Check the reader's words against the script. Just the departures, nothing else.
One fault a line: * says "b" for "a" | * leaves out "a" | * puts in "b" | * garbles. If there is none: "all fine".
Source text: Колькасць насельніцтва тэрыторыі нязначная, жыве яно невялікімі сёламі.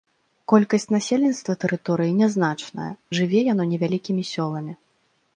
all fine